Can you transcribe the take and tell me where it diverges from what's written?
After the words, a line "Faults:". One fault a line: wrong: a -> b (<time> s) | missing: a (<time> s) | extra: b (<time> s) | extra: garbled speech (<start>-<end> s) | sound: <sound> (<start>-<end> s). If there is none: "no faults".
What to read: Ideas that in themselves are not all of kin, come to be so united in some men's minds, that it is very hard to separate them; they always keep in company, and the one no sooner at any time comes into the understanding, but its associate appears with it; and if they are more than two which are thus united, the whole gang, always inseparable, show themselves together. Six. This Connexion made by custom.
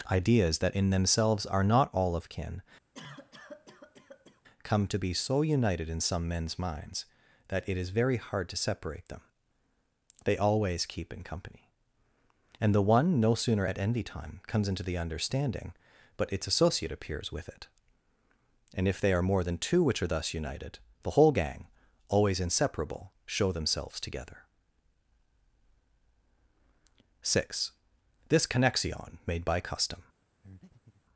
Ideas that in themselves are not all of kin, come to be so united in some men's minds, that it is very hard to separate them; they always keep in company, and the one no sooner at envy time comes into the understanding, but its associate appears with it; and if they are more than two which are thus united, the whole gang, always inseparable, show themselves together. Six. This Connexion made by custom.
Faults:
sound: cough (2.9-4.4 s)
wrong: any -> envy (13.8 s)
sound: breath (30.4-31.0 s)